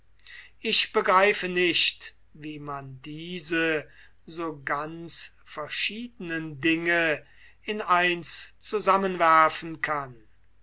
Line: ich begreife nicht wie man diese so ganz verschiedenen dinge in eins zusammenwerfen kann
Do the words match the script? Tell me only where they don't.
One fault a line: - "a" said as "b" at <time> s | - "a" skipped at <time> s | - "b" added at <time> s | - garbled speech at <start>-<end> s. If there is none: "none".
none